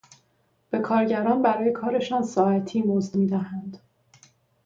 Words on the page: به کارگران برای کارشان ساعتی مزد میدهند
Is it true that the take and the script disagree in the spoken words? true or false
false